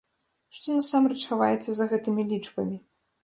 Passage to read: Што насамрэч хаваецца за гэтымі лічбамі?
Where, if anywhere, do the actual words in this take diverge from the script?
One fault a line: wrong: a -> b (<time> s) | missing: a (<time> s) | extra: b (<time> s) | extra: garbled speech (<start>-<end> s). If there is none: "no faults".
no faults